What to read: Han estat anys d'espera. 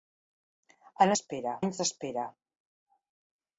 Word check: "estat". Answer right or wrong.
wrong